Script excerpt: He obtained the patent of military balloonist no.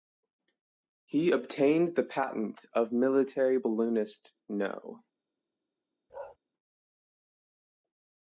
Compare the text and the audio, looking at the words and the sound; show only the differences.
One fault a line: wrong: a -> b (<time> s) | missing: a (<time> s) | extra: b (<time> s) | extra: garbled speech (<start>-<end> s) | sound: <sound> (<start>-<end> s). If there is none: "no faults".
sound: bark (6.1-6.4 s)